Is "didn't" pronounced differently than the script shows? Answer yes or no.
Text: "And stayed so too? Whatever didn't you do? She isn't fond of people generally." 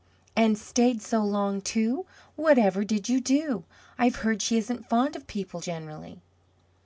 yes